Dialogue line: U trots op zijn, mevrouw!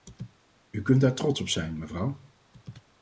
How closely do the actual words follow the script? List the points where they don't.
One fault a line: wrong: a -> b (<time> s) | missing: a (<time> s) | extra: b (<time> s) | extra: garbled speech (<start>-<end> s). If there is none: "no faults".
extra: kunt daar (0.8 s)